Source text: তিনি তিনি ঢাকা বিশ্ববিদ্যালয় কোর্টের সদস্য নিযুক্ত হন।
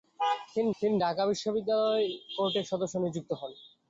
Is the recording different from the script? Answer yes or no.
no